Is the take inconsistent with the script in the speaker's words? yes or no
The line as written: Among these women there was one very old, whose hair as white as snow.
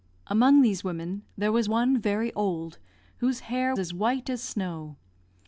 no